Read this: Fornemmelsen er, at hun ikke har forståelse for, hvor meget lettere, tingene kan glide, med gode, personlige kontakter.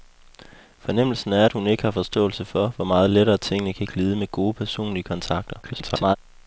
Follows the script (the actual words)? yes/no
no